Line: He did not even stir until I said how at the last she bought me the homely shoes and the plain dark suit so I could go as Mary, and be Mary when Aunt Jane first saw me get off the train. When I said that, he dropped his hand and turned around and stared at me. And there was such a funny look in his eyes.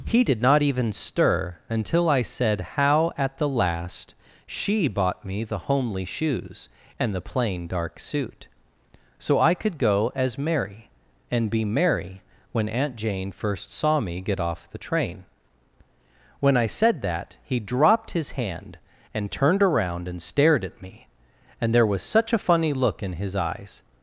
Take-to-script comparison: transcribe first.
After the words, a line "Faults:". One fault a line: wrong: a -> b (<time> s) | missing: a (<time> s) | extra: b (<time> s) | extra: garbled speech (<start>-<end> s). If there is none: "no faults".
He did not even stir until I said how at the last she bought me the homely shoes and the plain dark suit so I could go as Mary, and be Mary when Aunt Jane first saw me get off the train. When I said that, he dropped his hand and turned around and stared at me. And there was such a funny look in his eyes.
Faults:
no faults